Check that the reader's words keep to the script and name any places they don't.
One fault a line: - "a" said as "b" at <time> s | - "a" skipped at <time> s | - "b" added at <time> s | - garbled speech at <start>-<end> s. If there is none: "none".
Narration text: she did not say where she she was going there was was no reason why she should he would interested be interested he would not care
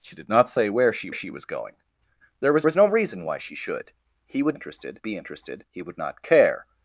none